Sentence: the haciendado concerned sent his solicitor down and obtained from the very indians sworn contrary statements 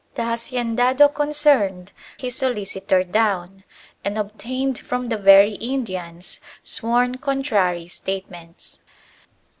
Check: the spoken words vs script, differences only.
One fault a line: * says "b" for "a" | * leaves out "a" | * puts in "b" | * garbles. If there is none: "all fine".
* leaves out "sent"